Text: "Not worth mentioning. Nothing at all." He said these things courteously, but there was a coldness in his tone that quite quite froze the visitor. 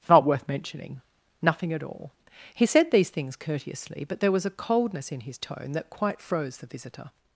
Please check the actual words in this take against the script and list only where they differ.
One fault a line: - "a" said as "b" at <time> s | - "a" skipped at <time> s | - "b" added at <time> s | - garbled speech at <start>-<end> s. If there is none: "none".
- "quite" skipped at 6.2 s